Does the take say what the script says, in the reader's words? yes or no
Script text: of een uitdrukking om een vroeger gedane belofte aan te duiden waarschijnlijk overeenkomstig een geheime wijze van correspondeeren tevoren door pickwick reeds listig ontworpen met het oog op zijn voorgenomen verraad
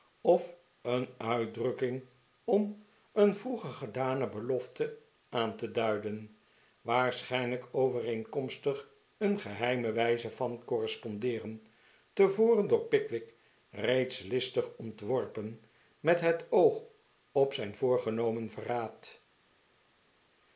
yes